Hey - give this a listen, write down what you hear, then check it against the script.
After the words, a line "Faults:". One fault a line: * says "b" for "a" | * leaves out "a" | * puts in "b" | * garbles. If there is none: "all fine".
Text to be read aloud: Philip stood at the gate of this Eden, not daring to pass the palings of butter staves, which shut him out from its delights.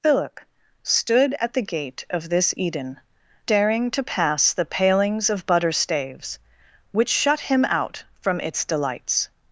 Philip stood at the gate of this Eden, daring to pass the palings of butter staves, which shut him out from its delights.
Faults:
* leaves out "not"